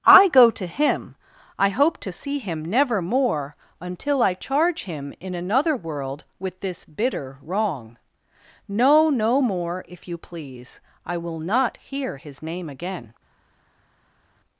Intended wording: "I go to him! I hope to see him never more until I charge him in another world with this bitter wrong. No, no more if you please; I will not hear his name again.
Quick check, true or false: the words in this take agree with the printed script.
true